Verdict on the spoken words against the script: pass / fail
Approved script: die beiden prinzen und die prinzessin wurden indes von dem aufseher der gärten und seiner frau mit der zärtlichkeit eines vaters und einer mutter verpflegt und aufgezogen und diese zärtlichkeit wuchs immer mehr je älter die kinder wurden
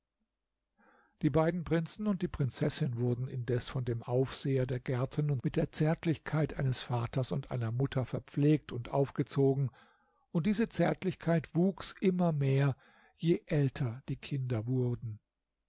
fail